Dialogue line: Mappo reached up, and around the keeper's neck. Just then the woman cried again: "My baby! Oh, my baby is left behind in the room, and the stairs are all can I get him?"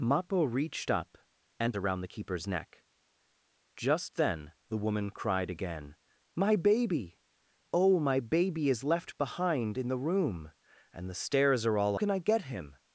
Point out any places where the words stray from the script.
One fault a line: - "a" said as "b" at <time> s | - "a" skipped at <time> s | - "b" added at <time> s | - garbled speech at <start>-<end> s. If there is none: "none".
none